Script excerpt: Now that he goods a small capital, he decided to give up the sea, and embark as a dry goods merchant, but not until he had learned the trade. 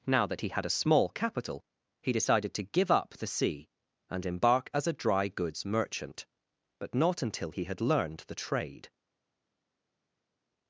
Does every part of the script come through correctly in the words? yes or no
no